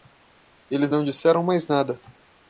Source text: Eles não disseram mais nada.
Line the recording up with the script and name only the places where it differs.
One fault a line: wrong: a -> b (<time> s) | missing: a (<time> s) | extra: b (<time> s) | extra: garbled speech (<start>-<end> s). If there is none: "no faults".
no faults